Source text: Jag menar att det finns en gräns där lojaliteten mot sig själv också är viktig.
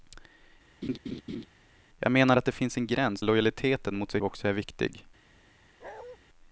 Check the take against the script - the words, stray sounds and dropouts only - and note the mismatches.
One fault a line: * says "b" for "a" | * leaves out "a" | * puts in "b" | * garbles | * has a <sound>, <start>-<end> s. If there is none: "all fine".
* has a laugh, 0.8-1.5 s
* leaves out "där"
* leaves out "själv"
* has a bark, 5.8-6.2 s